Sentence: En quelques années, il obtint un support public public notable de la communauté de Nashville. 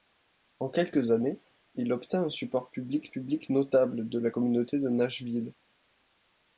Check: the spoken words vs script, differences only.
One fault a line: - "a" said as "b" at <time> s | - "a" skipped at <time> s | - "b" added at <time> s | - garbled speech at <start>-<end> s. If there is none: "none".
none